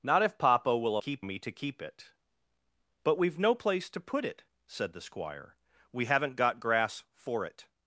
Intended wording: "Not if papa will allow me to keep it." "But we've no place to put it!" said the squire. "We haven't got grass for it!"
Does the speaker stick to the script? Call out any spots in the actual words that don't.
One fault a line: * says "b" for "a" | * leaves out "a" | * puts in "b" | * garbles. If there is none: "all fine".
* says "keep" for "allow"